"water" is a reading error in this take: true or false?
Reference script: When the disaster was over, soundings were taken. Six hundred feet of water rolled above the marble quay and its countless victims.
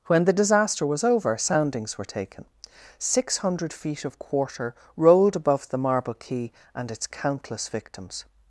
true